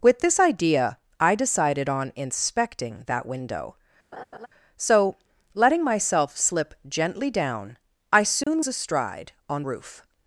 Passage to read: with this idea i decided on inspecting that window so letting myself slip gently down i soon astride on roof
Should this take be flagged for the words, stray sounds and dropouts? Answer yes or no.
yes